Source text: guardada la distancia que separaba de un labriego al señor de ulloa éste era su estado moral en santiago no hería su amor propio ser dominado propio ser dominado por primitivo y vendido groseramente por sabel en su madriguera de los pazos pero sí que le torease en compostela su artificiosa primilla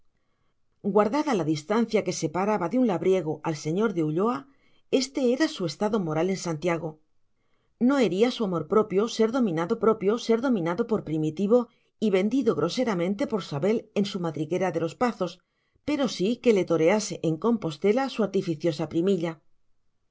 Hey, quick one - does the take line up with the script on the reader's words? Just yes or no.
yes